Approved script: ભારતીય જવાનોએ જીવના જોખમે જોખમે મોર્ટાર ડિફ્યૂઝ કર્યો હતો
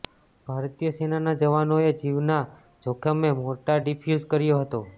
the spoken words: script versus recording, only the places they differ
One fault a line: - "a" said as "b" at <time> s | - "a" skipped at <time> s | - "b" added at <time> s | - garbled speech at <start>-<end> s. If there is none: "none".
- "સેનાના" added at 0.9 s
- "જોખમે" skipped at 3.3 s